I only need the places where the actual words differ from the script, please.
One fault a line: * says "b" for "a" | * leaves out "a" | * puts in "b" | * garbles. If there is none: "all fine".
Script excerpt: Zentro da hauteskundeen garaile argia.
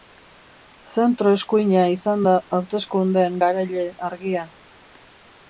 * puts in "eskuina izan"